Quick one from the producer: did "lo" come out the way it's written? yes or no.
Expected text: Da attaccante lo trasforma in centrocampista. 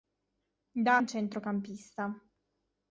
no